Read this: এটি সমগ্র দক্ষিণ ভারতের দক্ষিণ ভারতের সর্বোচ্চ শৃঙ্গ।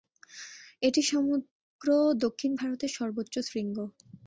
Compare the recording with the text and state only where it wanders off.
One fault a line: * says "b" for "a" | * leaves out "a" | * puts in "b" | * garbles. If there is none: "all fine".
* leaves out "দক্ষিণ ভারতের"